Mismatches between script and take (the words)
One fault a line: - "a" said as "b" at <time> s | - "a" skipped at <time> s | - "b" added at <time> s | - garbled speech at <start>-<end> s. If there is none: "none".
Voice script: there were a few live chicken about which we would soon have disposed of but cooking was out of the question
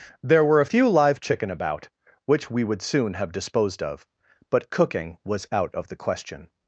none